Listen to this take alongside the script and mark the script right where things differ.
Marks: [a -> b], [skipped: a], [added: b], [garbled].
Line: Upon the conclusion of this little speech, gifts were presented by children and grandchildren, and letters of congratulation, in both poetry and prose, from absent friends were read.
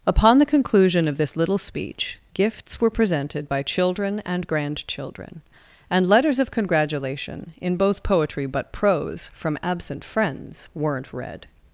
Upon the conclusion of this little speech, gifts were presented by children and grandchildren, and letters of congratulation, in both poetry [and -> but] prose, from absent friends [were -> weren't] read.